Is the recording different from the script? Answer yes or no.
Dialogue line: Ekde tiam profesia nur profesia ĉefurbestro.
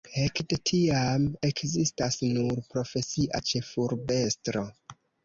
yes